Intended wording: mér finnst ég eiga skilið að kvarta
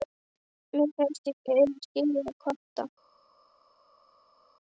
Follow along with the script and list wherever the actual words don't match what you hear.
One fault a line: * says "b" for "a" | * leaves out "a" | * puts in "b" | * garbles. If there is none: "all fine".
all fine